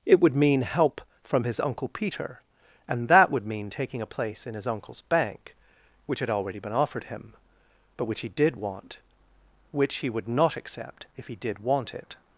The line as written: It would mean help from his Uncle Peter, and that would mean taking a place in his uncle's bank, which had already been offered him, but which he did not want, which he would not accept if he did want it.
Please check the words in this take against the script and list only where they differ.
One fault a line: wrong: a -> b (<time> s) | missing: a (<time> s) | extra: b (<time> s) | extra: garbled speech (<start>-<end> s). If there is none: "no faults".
missing: not (8.5 s)